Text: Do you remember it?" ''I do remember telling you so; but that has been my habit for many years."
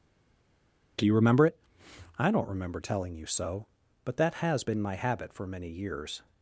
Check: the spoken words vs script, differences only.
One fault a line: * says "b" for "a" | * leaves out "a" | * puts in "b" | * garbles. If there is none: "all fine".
* says "don't" for "do"